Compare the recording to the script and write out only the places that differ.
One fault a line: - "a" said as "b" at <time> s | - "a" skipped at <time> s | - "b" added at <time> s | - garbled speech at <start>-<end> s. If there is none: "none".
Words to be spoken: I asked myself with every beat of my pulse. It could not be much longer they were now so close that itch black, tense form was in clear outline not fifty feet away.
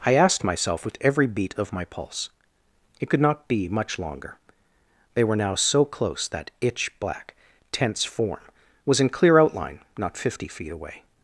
none